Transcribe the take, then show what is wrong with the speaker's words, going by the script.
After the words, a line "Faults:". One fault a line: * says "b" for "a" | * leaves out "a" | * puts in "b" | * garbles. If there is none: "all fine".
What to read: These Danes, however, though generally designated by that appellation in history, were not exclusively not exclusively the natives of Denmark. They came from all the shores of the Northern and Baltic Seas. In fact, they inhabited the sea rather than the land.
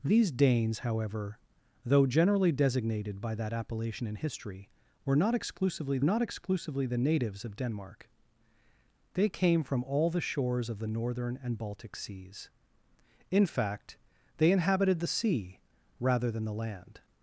These Danes, however, though generally designated by that appellation in history, were not exclusively not exclusively the natives of Denmark. They came from all the shores of the Northern and Baltic Seas. In fact, they inhabited the sea rather than the land.
Faults:
all fine